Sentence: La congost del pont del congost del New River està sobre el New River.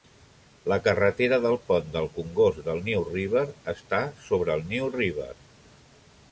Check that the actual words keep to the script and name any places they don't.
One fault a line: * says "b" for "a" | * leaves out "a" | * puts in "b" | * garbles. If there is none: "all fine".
* says "carretera" for "congost"